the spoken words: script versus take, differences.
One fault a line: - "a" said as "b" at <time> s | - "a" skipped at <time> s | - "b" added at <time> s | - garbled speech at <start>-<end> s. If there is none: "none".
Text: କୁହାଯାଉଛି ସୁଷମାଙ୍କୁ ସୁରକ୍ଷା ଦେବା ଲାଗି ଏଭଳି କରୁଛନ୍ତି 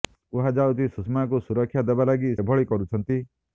none